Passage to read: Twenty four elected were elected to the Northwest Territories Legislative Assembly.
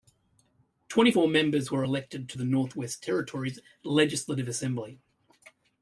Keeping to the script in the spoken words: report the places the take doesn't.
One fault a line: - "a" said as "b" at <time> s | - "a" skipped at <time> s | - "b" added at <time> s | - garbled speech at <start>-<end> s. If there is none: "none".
- "elected" said as "members" at 1.3 s